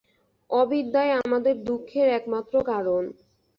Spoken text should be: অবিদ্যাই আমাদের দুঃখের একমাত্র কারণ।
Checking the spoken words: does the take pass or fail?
pass